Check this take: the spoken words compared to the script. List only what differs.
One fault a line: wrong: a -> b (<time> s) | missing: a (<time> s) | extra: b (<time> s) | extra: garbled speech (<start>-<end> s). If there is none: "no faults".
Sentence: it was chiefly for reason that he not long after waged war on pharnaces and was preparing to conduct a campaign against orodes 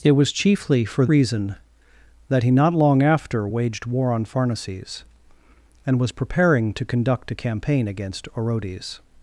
no faults